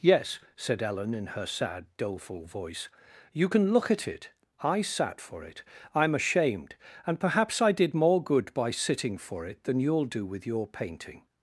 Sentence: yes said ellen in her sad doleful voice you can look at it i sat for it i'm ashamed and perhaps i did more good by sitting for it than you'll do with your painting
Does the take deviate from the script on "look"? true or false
false